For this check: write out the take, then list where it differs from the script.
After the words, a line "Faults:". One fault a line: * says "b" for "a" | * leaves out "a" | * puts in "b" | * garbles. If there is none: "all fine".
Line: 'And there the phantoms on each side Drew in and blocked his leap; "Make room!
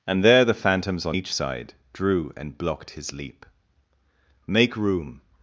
'And there the phantoms on each side Drew and blocked his leap; "Make room!
Faults:
* leaves out "in"